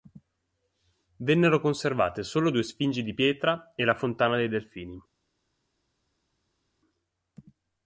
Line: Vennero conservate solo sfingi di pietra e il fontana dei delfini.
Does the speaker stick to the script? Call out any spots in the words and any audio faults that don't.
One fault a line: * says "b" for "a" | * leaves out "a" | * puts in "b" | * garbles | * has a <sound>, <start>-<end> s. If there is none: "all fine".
* puts in "due"
* says "la" for "il"